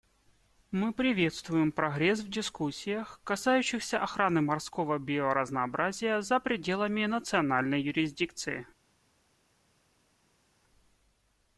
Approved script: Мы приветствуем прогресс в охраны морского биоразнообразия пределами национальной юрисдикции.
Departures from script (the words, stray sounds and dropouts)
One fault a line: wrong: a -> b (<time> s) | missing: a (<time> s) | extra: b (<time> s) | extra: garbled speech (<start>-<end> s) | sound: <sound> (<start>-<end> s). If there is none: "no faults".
extra: дискуссиях касающихся (2.3 s)
extra: за (6.2 s)